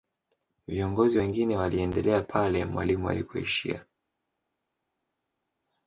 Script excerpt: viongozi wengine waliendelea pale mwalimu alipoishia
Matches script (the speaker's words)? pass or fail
pass